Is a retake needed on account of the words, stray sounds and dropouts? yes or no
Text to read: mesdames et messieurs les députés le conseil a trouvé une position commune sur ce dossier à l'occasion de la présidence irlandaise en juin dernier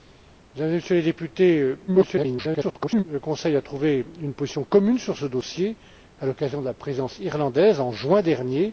yes